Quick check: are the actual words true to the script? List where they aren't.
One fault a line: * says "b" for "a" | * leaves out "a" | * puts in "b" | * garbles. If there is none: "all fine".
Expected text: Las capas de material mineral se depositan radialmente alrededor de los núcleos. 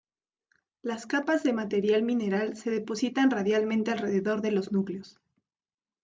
all fine